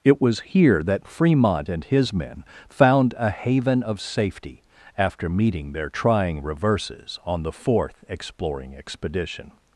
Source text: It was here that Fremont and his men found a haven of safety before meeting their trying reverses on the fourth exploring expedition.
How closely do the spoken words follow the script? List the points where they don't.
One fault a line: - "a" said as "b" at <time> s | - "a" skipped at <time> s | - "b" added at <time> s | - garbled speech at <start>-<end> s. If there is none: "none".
- "before" said as "after" at 4.9 s